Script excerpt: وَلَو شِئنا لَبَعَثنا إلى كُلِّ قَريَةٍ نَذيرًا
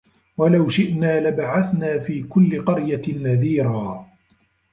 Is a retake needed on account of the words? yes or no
yes